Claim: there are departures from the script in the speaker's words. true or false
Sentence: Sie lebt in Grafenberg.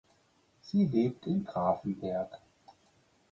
false